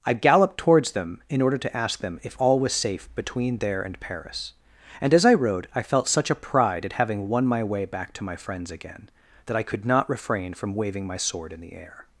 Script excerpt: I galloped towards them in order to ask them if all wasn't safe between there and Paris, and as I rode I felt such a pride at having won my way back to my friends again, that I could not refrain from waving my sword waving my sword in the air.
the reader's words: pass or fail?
fail